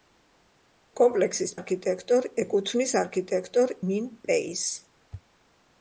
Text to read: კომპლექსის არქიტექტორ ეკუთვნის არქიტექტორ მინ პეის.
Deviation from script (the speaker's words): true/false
false